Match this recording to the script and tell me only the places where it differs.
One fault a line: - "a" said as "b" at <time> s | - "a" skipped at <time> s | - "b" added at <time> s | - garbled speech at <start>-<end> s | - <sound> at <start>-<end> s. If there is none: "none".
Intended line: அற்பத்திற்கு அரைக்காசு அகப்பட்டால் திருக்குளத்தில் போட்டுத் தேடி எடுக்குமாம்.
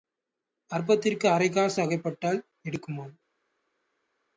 - "திருக்குளத்தில் போட்டுத் தேடி" skipped at 2.4 s